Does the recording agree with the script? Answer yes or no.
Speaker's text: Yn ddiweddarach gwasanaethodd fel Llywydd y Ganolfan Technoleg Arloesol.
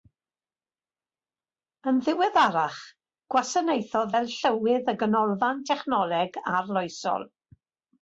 yes